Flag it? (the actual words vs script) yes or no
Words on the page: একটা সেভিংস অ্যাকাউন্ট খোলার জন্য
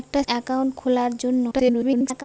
yes